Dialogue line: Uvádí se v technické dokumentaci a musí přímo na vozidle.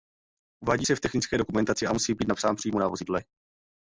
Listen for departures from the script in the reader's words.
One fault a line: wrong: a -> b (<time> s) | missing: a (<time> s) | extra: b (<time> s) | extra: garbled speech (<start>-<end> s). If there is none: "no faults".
extra: být napsán (2.1 s)